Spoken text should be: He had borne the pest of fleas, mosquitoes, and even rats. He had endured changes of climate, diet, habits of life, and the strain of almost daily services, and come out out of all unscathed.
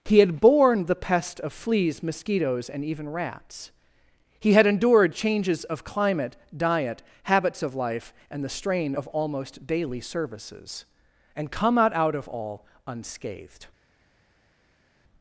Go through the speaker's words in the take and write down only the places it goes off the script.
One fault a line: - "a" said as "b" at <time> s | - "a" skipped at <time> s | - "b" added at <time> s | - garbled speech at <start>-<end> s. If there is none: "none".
none